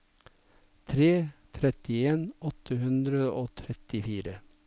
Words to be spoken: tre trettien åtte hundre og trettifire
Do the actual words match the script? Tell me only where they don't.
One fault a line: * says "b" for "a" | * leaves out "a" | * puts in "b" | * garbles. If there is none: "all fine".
all fine